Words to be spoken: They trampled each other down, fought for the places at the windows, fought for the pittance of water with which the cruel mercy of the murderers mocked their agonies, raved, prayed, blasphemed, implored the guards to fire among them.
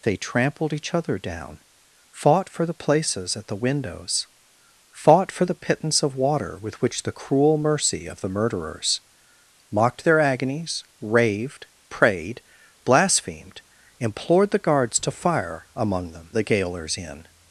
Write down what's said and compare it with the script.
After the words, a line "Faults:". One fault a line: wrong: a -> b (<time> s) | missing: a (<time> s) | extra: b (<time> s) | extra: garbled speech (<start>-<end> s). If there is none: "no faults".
They trampled each other down, fought for the places at the windows, fought for the pittance of water with which the cruel mercy of the murderers mocked their agonies, raved, prayed, blasphemed, implored the guards to fire among them. The gaolers in
Faults:
extra: The gaolers in (16.3 s)